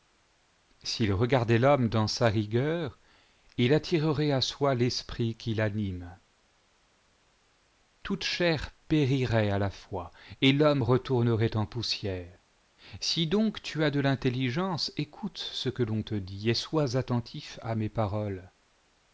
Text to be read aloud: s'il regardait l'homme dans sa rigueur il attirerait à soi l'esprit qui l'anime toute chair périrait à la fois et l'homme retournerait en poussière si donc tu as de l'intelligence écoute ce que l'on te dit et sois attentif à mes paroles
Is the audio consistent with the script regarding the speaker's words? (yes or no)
yes